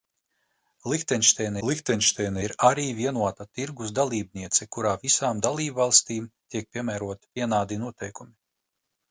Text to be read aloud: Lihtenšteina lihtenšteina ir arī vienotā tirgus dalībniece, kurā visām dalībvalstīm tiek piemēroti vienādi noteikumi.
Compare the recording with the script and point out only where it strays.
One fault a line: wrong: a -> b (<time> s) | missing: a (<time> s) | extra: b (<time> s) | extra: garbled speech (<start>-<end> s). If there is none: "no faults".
no faults